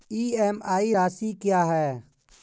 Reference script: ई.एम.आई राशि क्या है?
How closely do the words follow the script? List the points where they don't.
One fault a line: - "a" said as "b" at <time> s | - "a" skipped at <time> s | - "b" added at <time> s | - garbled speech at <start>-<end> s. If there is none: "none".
none